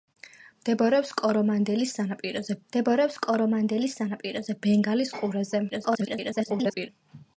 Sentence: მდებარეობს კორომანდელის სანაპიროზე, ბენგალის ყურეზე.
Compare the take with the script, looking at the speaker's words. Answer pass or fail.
fail